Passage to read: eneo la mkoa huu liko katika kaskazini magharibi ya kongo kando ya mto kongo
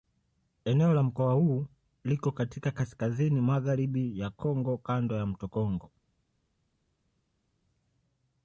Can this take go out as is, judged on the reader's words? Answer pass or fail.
pass